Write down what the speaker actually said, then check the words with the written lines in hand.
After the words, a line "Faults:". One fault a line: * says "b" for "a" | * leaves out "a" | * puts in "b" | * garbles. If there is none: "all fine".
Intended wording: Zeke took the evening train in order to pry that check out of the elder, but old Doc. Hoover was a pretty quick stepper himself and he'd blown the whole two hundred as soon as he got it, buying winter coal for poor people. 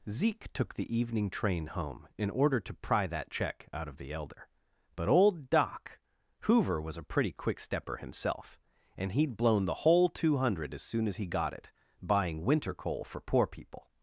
Zeke took the evening train home in order to pry that check out of the elder, but old Doc. Hoover was a pretty quick stepper himself and he'd blown the whole two hundred as soon as he got it, buying winter coal for poor people.
Faults:
* puts in "home"